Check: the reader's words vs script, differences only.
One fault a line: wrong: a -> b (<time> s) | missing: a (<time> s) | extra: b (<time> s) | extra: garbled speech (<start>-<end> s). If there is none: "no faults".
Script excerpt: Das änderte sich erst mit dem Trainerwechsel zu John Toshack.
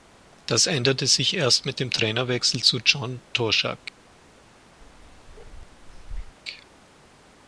no faults